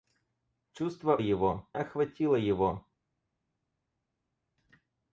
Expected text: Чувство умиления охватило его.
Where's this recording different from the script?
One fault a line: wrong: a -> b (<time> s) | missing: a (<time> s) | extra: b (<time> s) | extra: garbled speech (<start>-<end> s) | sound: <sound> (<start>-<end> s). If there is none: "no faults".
wrong: умиления -> его (1.2 s)